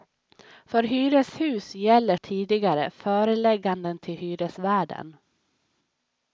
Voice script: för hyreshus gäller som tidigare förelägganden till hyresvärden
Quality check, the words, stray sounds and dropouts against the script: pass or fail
fail